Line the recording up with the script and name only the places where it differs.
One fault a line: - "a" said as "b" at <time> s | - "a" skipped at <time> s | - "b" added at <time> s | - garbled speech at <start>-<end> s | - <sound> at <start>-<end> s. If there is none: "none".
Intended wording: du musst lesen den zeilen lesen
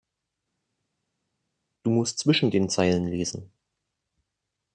- "lesen" said as "zwischen" at 2.2 s